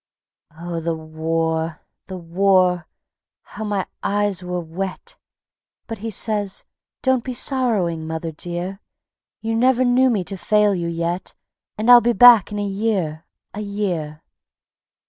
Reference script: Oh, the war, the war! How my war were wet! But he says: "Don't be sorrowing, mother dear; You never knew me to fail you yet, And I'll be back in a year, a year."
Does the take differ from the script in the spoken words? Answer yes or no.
yes